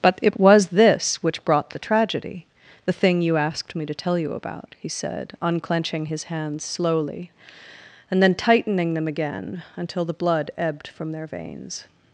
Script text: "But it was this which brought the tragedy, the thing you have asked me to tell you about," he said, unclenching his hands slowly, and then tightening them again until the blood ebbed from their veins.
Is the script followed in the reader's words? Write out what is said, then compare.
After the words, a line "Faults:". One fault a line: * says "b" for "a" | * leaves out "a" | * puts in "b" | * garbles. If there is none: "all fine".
"But it was this which brought the tragedy, the thing you asked me to tell you about," he said, unclenching his hands slowly, and then tightening them again until the blood ebbed from their veins.
Faults:
* leaves out "have"